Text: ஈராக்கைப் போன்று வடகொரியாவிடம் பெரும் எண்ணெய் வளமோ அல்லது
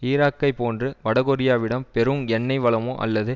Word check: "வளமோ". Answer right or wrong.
right